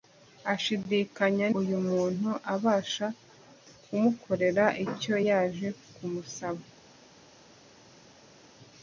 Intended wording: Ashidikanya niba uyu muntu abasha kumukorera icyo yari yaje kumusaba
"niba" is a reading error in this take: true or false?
true